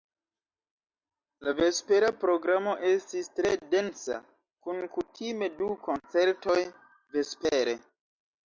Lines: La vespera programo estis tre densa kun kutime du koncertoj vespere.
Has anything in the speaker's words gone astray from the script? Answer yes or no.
no